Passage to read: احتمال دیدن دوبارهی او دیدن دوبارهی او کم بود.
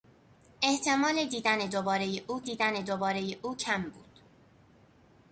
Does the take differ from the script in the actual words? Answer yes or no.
no